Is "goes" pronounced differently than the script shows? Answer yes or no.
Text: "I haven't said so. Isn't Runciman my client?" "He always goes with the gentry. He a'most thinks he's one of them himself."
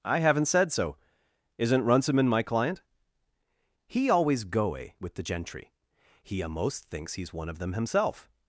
yes